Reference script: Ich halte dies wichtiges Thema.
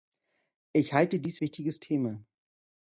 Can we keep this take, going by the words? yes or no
yes